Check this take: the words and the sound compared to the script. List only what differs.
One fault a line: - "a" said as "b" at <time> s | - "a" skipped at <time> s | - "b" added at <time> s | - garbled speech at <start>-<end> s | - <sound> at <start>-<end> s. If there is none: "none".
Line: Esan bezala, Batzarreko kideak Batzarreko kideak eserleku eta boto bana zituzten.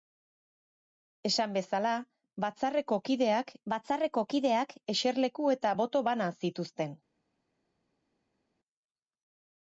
none